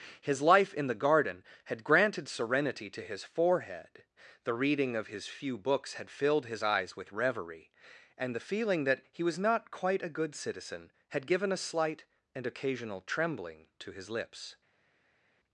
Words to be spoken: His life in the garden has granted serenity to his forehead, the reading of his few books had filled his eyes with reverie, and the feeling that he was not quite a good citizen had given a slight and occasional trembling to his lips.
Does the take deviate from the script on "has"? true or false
true